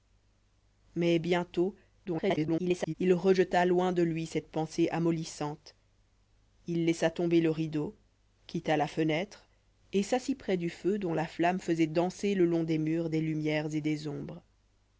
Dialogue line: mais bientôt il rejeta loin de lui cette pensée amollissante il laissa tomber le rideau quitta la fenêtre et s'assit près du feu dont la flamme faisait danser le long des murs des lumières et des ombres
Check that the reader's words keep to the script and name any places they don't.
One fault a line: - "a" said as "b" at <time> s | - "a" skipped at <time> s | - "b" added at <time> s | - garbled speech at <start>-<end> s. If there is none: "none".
- garbled speech at 2.1-2.9 s